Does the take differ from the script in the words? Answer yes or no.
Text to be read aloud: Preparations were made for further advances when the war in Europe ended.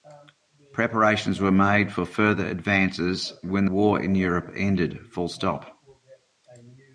yes